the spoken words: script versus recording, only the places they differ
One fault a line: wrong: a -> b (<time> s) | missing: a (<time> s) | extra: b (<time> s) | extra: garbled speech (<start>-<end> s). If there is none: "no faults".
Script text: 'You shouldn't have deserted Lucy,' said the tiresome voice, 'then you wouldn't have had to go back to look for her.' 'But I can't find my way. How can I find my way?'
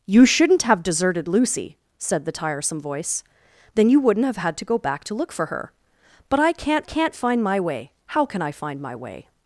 extra: can't (6.8 s)